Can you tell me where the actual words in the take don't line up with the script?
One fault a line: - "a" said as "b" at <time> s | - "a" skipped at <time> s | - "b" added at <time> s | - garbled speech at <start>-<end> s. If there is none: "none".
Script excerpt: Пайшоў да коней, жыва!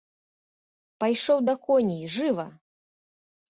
none